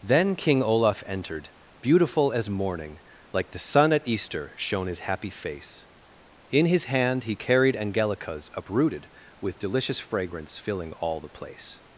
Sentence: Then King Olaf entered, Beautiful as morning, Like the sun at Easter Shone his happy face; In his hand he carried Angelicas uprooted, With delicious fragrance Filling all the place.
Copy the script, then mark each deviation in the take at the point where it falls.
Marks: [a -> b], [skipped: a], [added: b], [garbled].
Then King Olaf entered, Beautiful as morning, Like the sun at Easter Shone his happy face; In his hand he carried Angelicas uprooted, With delicious fragrance Filling all the place.